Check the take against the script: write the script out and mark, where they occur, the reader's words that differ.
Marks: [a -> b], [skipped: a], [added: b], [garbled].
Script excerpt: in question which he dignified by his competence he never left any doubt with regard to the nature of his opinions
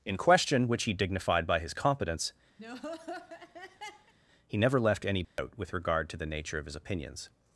in question which he dignified by his competence he never left any doubt with regard to the nature of his opinions